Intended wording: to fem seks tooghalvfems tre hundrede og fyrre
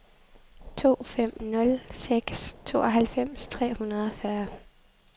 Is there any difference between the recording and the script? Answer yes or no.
yes